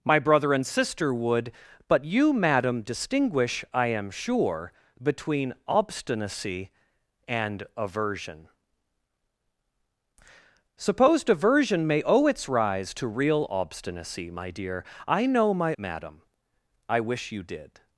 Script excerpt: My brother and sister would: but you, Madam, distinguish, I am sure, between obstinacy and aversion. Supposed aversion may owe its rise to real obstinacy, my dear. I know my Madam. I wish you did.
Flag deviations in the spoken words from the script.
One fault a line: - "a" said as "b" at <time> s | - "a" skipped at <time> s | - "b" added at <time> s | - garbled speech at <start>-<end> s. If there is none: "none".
none